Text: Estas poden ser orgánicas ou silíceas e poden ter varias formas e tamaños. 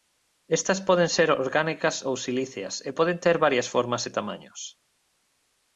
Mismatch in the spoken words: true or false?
false